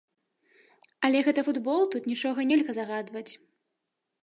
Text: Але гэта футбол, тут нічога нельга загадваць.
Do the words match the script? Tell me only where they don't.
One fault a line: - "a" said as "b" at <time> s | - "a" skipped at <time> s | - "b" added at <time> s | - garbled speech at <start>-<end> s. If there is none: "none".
none